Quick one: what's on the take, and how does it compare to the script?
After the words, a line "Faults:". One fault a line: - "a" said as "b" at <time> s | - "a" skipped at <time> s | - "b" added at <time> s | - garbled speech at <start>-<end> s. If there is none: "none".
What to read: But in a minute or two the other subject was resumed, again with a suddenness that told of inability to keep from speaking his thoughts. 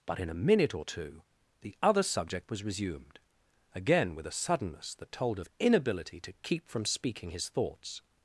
But in a minute or two the other subject was resumed, again with a suddenness that told of inability to keep from speaking his thoughts.
Faults:
none